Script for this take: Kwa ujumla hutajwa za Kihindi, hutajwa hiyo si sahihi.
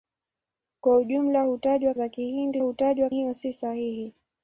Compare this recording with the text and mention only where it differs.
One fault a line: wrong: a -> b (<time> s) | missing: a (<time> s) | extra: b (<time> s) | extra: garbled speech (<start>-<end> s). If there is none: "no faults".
no faults